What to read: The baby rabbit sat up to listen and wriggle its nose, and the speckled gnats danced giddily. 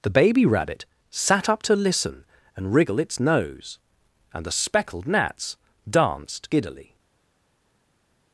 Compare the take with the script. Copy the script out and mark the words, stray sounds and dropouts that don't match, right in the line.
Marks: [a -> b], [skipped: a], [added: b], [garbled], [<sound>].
The baby rabbit sat up to listen and wriggle its nose, and the speckled gnats danced giddily.